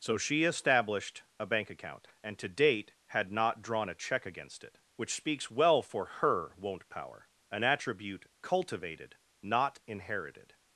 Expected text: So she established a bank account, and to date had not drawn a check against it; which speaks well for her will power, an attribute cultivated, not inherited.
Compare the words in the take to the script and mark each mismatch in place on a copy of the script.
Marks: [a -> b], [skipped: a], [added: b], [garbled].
So she established a bank account, and to date had not drawn a check against it; which speaks well for her [will -> won't] power, an attribute cultivated, not inherited.